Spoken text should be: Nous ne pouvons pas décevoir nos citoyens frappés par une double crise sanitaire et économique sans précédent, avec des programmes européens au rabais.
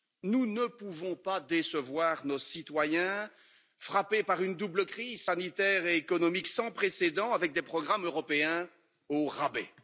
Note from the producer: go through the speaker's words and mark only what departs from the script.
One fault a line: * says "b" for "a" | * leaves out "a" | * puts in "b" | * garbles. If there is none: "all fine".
all fine